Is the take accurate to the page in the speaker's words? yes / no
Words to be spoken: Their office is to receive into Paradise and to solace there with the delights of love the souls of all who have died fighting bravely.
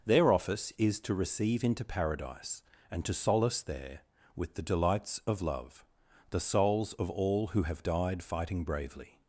yes